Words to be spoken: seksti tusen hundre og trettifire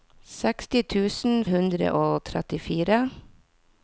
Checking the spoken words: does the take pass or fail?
pass